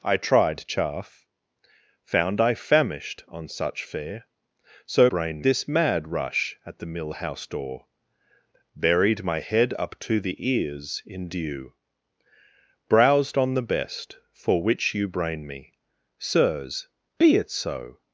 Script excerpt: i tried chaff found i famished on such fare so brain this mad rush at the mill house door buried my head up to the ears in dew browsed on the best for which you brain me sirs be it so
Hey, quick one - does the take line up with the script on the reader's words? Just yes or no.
yes